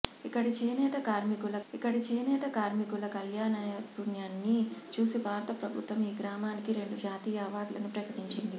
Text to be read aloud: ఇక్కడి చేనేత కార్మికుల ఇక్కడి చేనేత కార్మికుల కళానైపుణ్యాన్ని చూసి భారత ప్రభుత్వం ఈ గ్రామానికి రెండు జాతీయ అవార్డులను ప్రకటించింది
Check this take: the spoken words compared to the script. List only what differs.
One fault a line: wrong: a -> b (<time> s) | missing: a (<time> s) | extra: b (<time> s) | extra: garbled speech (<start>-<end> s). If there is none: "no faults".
no faults